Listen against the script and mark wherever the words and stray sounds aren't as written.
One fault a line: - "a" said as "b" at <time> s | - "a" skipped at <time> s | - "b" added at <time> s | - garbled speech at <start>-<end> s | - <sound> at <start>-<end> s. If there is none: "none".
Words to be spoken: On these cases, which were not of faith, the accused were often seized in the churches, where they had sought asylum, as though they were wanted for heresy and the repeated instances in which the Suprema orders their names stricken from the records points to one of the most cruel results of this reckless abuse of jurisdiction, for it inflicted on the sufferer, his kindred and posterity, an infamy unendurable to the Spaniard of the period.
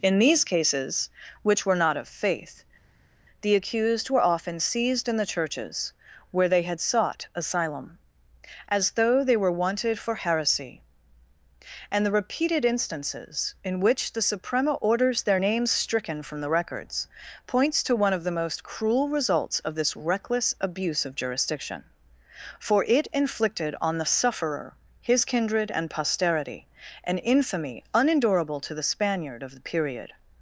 - "On" said as "In" at 0.0 s